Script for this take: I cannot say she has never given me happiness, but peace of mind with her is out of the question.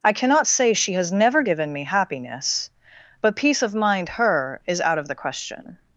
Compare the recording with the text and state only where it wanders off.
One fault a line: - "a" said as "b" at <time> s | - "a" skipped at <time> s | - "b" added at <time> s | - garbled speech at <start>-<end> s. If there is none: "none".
- "with" skipped at 4.1 s